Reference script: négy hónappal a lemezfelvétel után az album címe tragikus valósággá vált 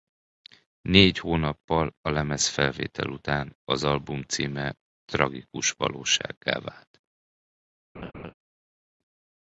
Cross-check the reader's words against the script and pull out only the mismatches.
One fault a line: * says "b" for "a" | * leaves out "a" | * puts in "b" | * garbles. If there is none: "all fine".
all fine